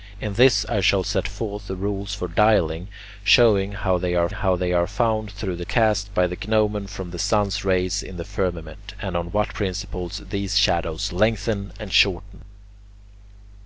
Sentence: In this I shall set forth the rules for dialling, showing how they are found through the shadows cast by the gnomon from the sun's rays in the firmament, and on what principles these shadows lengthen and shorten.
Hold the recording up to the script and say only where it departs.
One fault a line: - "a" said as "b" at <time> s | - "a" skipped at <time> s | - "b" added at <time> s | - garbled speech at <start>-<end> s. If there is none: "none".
- "how they are" added at 4.3 s
- "shadows" skipped at 5.7 s